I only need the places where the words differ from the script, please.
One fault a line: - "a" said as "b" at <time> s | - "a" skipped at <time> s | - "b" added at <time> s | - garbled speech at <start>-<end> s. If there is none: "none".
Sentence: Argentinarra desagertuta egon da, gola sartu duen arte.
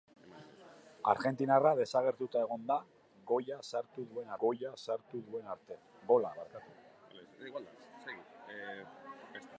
- "gola sartu duen" added at 4.5 s